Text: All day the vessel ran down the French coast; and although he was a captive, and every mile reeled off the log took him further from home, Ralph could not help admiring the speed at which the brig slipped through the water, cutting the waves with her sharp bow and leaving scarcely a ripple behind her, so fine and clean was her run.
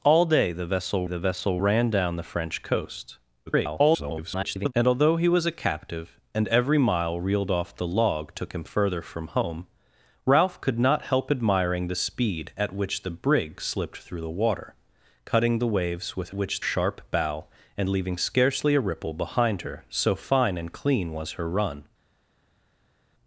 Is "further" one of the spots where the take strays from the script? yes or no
no